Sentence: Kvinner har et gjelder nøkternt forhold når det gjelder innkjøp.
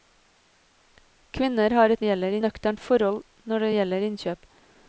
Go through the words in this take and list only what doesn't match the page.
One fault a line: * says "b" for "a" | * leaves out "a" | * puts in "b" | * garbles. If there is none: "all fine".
all fine